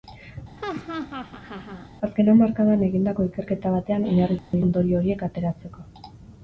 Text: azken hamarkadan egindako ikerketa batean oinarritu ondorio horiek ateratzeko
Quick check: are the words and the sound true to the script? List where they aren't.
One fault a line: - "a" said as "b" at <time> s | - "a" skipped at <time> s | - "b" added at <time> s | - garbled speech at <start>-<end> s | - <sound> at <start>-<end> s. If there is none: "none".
- laugh at 0.6-1.9 s
- dropout at 4.4-4.5 s